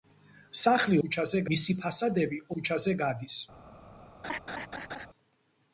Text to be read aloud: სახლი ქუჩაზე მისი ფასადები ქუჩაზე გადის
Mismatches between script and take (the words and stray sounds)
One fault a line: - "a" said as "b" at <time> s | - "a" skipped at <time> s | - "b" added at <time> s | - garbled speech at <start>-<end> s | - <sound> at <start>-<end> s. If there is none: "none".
- laugh at 4.2-5.1 s